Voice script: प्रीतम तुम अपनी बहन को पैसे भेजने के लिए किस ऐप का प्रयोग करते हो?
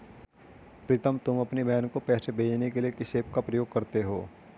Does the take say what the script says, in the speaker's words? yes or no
yes